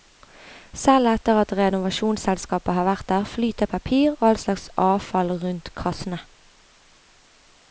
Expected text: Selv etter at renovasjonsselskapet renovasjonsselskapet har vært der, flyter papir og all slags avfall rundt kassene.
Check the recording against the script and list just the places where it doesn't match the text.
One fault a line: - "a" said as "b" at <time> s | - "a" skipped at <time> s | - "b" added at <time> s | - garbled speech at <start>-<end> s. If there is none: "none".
- "renovasjonsselskapet" skipped at 2.7 s